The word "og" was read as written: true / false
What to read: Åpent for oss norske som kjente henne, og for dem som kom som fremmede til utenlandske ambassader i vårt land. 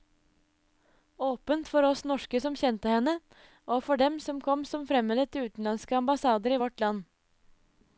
true